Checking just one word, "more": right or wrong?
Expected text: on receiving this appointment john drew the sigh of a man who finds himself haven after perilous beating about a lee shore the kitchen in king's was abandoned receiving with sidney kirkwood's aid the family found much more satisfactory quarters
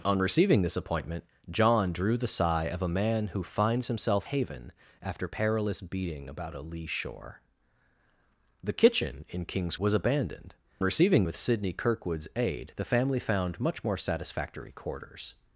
right